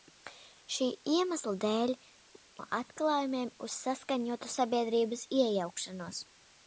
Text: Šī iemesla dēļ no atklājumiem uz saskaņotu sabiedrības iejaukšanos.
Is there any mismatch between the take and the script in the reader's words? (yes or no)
no